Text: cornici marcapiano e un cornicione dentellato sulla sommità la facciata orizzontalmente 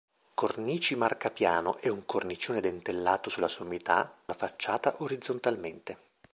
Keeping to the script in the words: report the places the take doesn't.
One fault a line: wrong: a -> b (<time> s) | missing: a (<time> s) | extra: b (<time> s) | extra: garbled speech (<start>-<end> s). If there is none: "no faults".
no faults